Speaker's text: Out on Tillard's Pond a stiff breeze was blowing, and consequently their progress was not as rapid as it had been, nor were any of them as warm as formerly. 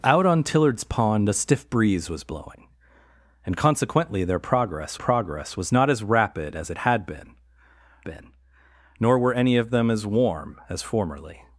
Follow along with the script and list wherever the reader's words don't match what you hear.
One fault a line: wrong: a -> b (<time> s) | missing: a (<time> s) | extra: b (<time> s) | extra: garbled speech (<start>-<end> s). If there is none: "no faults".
extra: progress (4.9 s)
extra: been (8.0 s)